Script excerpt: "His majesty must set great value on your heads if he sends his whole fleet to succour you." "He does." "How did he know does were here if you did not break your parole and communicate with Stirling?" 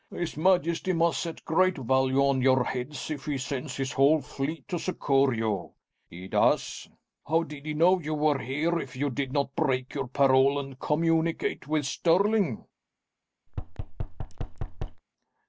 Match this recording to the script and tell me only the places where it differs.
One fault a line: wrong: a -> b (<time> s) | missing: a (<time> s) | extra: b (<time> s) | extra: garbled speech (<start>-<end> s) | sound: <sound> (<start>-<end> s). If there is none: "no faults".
wrong: does -> you (8.0 s)
sound: thud (13.5-15.0 s)